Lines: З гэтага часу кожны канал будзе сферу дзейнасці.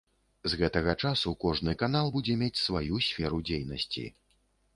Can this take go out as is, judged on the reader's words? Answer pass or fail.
fail